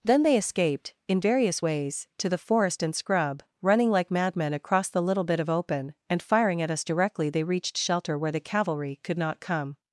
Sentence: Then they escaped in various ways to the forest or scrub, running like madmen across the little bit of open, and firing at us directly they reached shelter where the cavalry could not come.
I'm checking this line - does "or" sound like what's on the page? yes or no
no